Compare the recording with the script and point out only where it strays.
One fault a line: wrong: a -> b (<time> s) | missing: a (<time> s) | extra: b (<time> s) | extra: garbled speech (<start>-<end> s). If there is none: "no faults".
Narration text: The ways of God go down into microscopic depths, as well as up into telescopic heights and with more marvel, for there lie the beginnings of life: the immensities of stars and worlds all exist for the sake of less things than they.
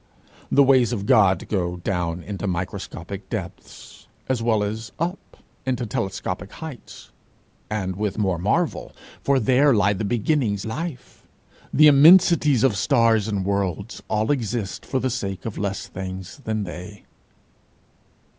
missing: of (10.7 s)